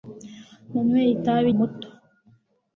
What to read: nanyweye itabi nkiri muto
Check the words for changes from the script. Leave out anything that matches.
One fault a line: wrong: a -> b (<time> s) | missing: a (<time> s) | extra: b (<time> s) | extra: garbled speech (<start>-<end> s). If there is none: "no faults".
missing: nkiri (1.5 s)